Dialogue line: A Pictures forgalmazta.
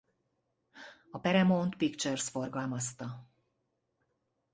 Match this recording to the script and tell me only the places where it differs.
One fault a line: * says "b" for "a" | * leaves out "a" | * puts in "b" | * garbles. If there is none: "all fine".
* puts in "Paramount"